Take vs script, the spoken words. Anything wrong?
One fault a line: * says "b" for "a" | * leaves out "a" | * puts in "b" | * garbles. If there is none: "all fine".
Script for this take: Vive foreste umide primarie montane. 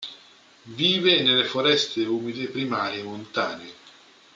* puts in "nelle"